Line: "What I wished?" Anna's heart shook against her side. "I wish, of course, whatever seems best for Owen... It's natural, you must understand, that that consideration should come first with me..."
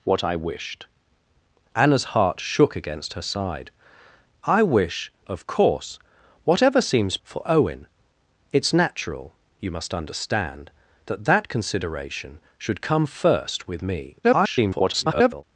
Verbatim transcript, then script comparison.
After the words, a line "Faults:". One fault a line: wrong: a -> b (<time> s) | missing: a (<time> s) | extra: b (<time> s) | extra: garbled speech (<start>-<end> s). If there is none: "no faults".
"What I wished?" Anna's heart shook against her side. "I wish, of course, whatever seems for Owen... It's natural, you must understand, that that consideration should come first with me..." [garbled]
Faults:
missing: best (7.2 s)
extra: garbled speech (14.2-15.4 s)